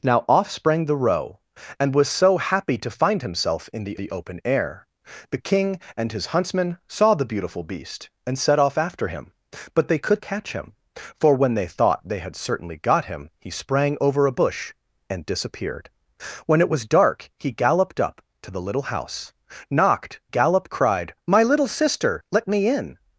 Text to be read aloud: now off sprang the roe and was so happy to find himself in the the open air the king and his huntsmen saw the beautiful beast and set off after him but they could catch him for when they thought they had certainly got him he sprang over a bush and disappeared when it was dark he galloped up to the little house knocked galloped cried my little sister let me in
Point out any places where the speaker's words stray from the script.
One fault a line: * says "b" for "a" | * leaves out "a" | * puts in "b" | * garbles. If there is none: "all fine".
all fine